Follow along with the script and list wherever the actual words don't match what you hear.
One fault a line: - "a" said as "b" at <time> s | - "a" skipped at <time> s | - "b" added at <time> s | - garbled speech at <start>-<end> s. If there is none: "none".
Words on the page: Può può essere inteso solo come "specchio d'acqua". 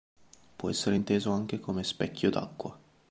- "può" skipped at 0.7 s
- "solo" said as "anche" at 1.3 s